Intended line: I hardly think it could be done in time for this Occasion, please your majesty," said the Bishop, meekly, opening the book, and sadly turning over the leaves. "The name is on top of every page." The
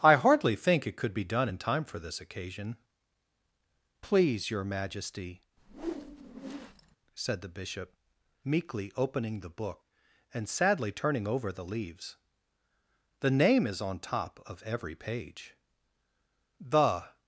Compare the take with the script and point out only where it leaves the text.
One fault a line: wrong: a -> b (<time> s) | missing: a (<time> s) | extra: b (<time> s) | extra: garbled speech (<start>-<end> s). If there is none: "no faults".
no faults